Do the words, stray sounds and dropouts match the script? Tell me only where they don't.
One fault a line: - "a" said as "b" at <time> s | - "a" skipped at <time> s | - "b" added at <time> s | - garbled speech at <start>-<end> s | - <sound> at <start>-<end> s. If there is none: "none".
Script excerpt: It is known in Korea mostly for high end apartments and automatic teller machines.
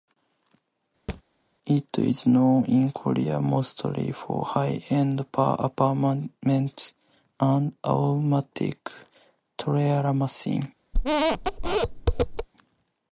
- thud at 1.1-1.2 s
- squeak at 10.9-12.5 s